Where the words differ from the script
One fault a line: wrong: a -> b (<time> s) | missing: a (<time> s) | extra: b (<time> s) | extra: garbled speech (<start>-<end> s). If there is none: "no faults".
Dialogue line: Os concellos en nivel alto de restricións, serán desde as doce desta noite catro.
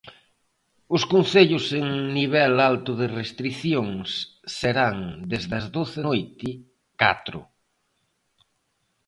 missing: desta (6.0 s)